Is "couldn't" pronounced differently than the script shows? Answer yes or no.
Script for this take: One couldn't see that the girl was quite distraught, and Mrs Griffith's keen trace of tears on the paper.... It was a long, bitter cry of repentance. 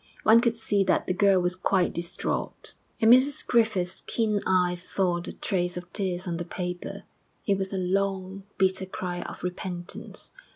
yes